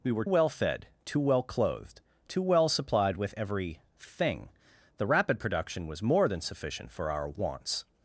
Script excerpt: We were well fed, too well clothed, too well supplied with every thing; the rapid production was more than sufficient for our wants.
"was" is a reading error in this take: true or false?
false